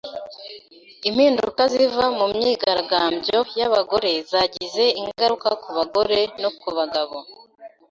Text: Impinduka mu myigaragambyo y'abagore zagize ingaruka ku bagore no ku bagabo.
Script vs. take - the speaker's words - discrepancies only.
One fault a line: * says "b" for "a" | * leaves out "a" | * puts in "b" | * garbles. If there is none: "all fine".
* puts in "ziva"